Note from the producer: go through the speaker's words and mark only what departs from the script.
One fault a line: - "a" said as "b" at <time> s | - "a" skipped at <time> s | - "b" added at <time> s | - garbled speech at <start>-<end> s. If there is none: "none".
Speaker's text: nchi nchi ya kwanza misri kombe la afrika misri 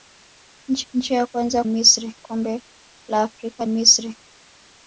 none